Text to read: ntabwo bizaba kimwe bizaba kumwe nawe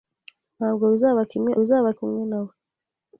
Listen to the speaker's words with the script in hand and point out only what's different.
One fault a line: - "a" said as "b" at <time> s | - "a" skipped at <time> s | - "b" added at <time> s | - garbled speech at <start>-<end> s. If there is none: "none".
none